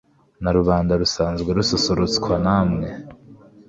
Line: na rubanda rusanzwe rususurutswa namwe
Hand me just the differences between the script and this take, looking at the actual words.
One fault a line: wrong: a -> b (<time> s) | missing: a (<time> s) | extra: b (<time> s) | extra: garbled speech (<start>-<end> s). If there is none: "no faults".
no faults